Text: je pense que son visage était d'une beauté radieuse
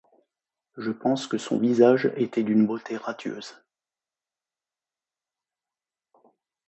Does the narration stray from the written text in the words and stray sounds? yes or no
no